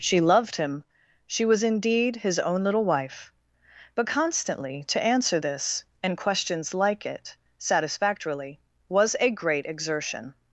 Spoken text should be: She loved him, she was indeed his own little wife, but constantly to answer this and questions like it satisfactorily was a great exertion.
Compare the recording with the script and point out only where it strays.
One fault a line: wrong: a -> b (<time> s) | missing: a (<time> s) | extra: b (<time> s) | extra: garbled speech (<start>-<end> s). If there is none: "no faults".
no faults